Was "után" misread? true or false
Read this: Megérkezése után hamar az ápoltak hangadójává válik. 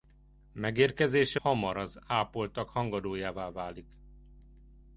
true